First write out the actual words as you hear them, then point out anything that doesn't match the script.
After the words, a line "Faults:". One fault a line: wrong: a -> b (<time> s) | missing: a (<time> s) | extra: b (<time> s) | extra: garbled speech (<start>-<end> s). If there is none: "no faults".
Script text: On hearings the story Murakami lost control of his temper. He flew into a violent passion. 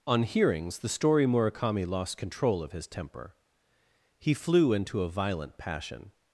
On hearings the story Murakami lost control of his temper. He flew into a violent passion.
Faults:
no faults